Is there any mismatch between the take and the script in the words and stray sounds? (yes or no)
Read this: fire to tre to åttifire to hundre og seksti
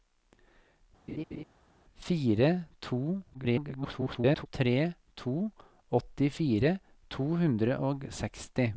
yes